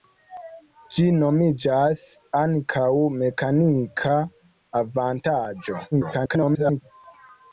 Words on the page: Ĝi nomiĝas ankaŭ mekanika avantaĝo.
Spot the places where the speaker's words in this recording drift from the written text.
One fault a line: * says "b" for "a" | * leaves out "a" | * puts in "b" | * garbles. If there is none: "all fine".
* garbles